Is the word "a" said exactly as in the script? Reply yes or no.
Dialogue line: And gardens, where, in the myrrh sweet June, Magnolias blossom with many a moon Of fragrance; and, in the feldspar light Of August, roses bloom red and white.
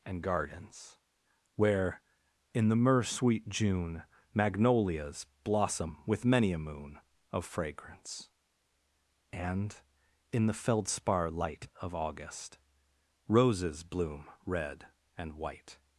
yes